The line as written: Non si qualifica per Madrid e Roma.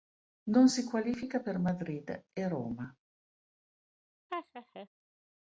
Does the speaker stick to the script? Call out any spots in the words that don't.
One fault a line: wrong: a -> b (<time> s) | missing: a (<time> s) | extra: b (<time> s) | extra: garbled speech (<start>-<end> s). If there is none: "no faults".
no faults